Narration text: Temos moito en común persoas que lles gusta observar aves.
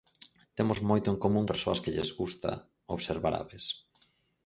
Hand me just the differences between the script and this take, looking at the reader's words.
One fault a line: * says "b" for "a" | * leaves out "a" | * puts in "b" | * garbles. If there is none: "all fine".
all fine